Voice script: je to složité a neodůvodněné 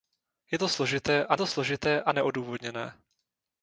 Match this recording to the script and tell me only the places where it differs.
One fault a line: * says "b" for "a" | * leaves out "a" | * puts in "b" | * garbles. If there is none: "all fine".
* puts in "to složité a"